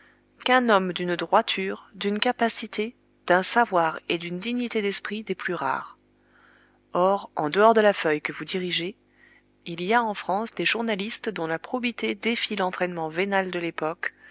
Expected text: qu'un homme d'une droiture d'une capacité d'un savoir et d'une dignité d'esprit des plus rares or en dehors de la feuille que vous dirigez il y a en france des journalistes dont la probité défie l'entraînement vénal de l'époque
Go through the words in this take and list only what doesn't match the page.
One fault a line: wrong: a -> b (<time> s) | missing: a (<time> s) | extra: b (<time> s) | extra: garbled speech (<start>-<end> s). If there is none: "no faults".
no faults